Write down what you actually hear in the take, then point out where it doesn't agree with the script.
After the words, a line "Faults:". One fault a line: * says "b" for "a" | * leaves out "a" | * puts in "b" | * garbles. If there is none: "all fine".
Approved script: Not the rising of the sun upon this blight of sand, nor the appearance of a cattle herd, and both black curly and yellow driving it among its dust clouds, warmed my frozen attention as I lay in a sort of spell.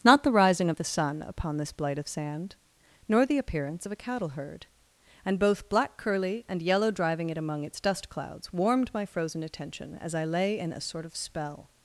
Not the rising of the sun upon this blight of sand, nor the appearance of a cattle herd, and both black curly and yellow driving it among its dust clouds, warmed my frozen attention as I lay in a sort of spell.
Faults:
all fine